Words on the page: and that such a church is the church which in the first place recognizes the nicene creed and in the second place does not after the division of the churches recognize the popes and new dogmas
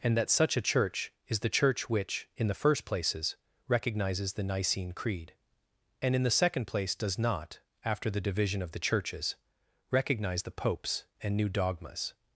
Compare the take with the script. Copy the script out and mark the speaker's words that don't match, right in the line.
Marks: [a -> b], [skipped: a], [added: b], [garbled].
and that such a church is the church which in the first [place -> places] recognizes the nicene creed and in the second place does not after the division of the churches recognize the popes and new dogmas